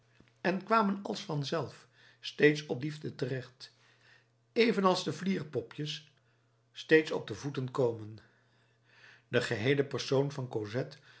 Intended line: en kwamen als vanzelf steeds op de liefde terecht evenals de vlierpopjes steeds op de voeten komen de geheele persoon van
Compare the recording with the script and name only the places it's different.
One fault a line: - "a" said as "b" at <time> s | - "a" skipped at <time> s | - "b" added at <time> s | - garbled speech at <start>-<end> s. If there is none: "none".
- "de" skipped at 2.8 s